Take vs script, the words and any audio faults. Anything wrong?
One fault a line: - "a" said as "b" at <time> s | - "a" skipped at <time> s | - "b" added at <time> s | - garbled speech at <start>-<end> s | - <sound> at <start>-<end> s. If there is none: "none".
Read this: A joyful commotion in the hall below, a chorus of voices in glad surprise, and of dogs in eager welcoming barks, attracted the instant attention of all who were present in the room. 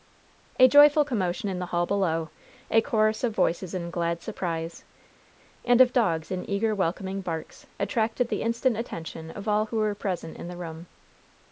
none